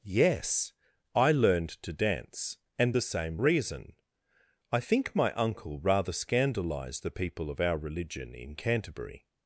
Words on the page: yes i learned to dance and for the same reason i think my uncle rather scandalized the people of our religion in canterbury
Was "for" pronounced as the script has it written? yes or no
no